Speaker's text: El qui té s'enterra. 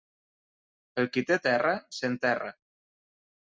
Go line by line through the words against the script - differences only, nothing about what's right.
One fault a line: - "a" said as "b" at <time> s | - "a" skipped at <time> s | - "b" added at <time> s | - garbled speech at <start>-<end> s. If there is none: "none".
- "terra" added at 1.5 s